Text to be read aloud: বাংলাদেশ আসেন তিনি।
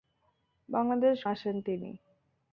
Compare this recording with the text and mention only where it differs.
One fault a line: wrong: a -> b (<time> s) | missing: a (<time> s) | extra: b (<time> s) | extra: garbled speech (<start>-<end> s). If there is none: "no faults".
no faults